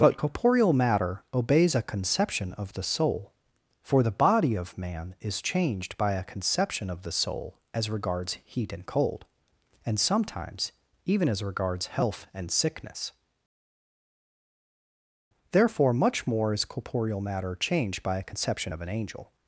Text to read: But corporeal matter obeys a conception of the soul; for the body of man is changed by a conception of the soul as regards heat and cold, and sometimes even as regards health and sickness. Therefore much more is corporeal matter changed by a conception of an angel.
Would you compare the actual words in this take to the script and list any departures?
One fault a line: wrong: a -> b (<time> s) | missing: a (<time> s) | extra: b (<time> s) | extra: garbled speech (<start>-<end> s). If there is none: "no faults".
no faults